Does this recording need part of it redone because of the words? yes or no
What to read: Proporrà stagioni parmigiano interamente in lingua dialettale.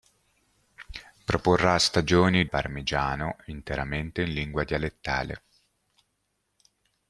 no